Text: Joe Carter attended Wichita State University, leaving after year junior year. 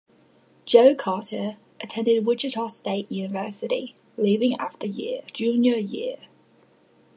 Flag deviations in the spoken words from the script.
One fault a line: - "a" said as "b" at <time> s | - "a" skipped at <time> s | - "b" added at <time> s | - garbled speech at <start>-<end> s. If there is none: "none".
none